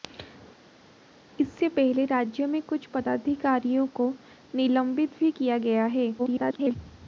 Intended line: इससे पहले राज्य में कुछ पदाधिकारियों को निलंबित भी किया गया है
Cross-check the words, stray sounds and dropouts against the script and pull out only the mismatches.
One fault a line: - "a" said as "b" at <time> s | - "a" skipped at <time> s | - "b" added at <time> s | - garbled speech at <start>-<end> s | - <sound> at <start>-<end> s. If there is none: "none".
- garbled speech at 6.2-6.8 s